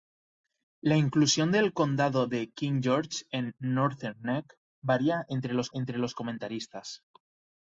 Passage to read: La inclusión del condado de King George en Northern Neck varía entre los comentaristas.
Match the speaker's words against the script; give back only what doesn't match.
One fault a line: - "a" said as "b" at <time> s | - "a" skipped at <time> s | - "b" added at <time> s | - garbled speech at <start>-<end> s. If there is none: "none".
- "entre los" added at 5.7 s